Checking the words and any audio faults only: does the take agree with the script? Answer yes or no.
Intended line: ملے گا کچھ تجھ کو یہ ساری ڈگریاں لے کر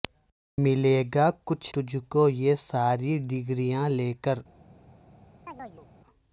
no